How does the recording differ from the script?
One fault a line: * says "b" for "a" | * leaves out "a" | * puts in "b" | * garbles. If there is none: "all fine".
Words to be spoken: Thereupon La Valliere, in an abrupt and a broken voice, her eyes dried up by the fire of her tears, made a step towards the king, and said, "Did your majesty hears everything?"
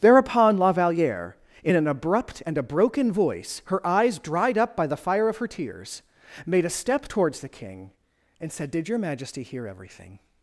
* says "hear" for "hears"